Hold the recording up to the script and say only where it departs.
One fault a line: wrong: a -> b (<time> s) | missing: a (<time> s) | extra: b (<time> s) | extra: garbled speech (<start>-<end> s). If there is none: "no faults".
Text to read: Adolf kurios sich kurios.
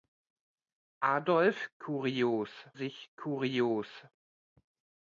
no faults